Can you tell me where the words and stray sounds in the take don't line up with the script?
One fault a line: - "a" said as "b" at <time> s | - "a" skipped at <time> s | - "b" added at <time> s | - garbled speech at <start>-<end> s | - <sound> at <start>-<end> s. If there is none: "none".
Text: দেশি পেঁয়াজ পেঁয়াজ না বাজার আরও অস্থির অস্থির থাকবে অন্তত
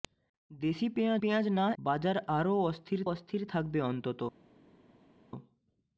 none